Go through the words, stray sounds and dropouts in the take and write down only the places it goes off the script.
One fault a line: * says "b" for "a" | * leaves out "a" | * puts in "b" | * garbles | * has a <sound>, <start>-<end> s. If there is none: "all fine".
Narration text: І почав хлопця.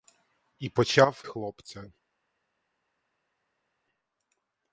all fine